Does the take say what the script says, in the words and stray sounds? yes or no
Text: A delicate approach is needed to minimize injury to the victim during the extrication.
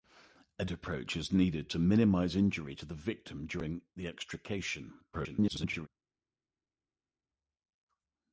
no